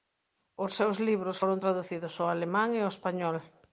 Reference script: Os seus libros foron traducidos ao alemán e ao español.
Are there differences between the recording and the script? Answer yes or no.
no